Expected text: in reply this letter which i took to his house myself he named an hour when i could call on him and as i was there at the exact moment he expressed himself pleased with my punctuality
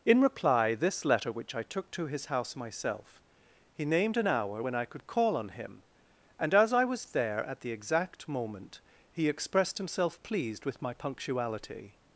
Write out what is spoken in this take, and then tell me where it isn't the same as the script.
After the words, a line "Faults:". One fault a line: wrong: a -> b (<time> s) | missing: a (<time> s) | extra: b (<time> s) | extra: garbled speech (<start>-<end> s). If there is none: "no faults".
in reply this letter which i took to his house myself he named an hour when i could call on him and as i was there at the exact moment he expressed himself pleased with my punctuality
Faults:
no faults